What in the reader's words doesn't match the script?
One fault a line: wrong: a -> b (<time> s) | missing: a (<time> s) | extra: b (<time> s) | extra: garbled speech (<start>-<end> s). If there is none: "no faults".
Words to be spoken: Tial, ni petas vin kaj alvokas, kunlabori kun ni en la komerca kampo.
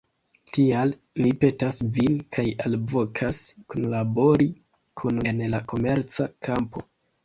missing: ni (5.2 s)